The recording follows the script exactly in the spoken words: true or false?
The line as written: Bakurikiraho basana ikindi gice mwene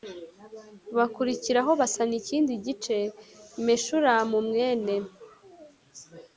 false